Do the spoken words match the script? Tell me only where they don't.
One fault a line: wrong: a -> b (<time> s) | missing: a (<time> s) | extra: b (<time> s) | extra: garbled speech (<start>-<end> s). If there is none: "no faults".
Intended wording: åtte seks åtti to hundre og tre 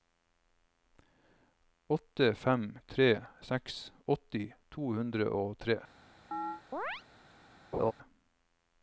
extra: fem tre (2.5 s)